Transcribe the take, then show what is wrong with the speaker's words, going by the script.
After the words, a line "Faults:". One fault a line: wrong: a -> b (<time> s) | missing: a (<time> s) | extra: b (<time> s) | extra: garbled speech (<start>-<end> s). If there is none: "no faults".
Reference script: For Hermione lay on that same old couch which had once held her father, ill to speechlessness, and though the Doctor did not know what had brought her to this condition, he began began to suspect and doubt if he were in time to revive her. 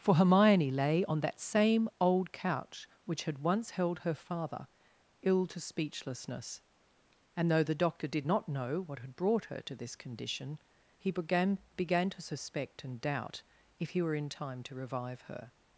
For Hermione lay on that same old couch which had once held her father, ill to speechlessness, and though the Doctor did not know what had brought her to this condition, he began began to suspect and doubt if he were in time to revive her.
Faults:
no faults